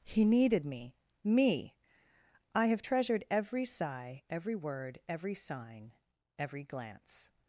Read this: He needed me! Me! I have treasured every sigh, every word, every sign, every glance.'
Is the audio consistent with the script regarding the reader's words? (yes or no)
yes